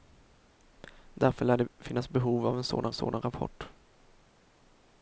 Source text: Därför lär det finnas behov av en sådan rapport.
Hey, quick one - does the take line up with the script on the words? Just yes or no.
no